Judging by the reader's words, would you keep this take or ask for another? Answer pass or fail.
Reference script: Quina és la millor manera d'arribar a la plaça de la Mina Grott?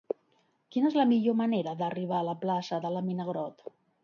pass